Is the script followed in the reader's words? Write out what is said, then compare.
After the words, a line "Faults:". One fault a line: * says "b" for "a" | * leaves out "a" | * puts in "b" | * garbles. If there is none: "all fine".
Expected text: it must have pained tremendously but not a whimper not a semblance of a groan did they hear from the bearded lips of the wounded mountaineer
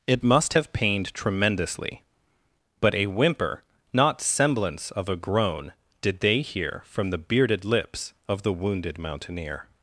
it must have pained tremendously but a whimper not semblance of a groan did they hear from the bearded lips of the wounded mountaineer
Faults:
* leaves out "not"
* leaves out "a"